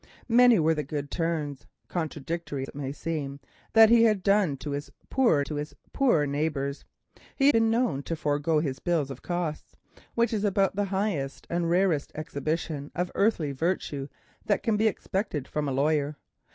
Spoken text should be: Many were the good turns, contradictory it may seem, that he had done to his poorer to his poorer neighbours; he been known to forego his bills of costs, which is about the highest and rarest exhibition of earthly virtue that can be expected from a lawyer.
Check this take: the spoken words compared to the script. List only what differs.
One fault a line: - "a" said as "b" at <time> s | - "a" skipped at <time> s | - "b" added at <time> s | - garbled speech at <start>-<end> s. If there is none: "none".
none